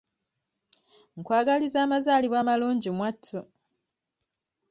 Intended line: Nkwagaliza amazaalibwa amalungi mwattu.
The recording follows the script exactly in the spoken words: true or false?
true